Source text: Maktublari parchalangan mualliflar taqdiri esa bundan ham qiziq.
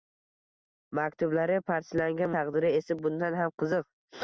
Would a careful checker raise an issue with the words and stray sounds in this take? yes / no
yes